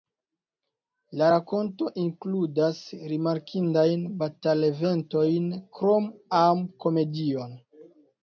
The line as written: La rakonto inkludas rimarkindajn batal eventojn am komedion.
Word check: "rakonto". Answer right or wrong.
right